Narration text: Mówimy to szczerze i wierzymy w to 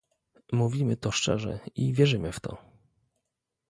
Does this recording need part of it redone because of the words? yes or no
no